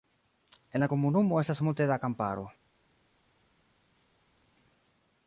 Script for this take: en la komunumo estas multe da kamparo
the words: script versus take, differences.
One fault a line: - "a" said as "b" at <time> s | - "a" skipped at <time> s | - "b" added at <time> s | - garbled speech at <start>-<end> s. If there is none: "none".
none